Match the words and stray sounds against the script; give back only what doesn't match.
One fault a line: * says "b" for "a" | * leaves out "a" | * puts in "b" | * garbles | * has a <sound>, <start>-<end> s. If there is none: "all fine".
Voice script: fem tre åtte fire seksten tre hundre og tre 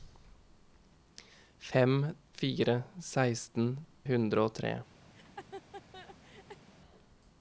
* leaves out "tre åtte"
* leaves out "tre"
* has a laugh, 5.1-6.6 s